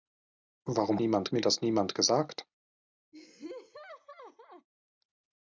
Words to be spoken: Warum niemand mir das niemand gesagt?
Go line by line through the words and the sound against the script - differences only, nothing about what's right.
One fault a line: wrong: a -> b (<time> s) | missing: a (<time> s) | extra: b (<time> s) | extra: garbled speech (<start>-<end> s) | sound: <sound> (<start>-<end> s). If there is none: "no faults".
sound: laugh (3.1-4.7 s)